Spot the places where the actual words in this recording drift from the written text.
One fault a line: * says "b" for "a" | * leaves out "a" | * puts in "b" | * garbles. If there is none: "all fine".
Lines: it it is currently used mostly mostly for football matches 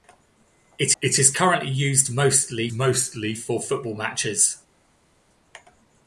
all fine